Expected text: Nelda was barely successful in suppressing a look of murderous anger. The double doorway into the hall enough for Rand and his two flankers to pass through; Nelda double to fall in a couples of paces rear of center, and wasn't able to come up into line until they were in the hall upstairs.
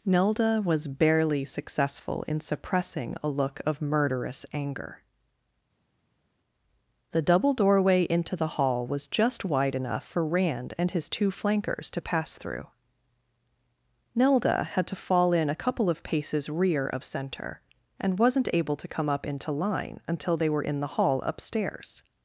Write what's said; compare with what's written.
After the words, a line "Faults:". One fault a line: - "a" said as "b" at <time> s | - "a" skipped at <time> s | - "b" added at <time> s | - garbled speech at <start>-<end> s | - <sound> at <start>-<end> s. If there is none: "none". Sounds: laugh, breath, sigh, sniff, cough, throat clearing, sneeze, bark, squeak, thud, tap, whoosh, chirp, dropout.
Nelda was barely successful in suppressing a look of murderous anger. The double doorway into the hall was just wide enough for Rand and his two flankers to pass through; Nelda had to fall in a couple of paces rear of center, and wasn't able to come up into line until they were in the hall upstairs.
Faults:
- "was just wide" added at 8.9 s
- "double" said as "had" at 14.6 s
- "couples" said as "couple" at 15.5 s